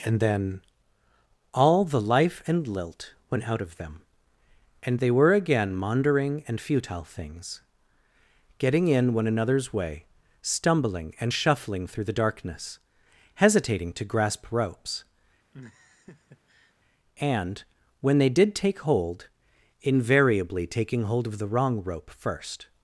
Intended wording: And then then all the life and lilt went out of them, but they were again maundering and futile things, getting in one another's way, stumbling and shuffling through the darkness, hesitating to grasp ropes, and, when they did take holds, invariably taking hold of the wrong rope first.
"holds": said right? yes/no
no